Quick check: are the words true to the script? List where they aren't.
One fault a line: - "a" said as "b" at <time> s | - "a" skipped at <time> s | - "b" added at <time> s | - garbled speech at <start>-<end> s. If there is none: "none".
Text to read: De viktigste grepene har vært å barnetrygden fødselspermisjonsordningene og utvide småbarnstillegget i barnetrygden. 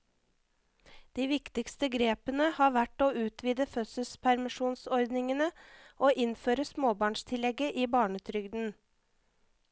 - "barnetrygden" said as "utvide" at 3.2 s
- "utvide" said as "innføre" at 6.3 s